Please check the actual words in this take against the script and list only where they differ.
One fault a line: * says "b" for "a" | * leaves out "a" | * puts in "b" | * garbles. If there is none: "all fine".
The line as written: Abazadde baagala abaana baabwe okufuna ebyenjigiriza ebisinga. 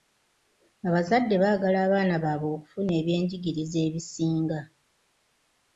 all fine